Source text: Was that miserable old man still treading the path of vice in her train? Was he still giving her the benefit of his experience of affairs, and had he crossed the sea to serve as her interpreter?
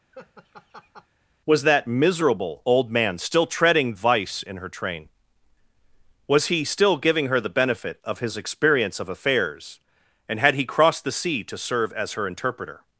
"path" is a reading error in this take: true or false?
true